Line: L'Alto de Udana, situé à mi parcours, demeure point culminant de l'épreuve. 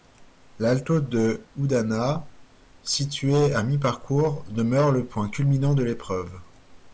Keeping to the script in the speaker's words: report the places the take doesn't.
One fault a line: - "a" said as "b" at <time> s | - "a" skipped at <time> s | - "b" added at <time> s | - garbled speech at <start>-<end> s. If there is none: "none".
- "le" added at 4.9 s